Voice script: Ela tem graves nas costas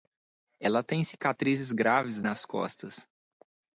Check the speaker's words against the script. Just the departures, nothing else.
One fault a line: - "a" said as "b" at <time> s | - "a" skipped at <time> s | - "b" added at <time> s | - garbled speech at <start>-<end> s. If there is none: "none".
- "cicatrizes" added at 1.0 s